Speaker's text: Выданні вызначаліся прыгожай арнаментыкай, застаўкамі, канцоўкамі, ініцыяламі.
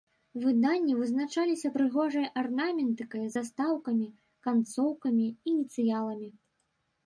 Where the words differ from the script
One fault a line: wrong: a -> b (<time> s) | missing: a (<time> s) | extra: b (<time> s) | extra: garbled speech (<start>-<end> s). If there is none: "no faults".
no faults